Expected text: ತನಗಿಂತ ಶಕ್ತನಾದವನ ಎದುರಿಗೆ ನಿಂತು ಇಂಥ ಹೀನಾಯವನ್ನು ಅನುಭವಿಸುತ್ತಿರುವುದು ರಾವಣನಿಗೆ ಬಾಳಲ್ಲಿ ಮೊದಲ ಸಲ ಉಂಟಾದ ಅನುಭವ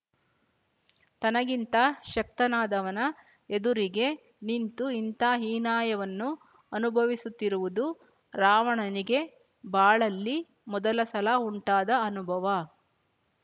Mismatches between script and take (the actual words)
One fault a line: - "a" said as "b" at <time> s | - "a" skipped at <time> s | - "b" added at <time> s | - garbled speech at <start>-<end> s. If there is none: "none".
none